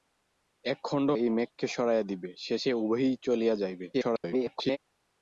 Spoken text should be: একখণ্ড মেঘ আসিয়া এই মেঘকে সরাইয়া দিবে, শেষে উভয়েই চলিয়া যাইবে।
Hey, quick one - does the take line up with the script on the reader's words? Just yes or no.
no